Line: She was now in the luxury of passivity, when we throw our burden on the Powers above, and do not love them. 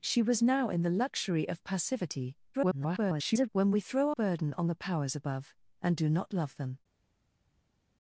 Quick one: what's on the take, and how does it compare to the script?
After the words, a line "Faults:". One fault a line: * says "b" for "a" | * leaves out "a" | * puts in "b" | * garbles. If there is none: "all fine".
She was now in the luxury of passivity, [garbled] when we throw burden on the Powers above, and do not love them.
Faults:
* garbles
* leaves out "our"